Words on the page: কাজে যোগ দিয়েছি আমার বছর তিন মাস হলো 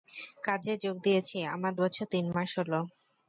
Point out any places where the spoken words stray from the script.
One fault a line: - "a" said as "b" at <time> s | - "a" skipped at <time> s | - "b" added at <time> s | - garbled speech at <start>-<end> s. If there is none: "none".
none